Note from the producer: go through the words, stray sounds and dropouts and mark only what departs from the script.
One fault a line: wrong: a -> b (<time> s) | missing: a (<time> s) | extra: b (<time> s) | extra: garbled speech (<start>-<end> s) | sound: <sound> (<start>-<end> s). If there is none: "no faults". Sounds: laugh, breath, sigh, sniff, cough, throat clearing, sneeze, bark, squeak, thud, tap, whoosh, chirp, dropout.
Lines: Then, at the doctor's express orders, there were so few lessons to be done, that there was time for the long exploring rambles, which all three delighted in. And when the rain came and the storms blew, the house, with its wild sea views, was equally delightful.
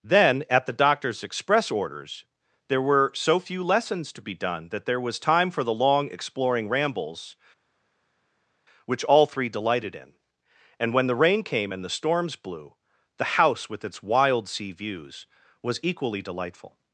no faults